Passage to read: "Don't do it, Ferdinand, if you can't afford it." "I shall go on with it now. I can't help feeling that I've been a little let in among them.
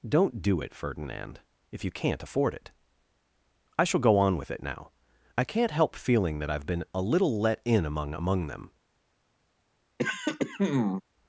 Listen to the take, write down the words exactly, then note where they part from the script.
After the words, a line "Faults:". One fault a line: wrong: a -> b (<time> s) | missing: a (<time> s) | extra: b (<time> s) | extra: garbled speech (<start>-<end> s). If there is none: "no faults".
"Don't do it, Ferdinand, if you can't afford it." "I shall go on with it now. I can't help feeling that I've been a little let in among among them.
Faults:
extra: among (8.1 s)